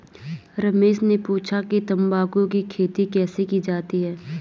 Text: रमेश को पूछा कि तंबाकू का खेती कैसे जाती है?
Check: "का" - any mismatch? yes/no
yes